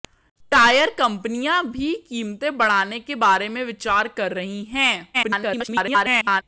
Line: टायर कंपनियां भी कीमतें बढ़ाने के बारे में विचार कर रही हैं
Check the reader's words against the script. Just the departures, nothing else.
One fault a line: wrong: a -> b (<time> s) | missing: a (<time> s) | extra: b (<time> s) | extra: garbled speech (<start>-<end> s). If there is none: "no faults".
extra: garbled speech (5.1-6.4 s)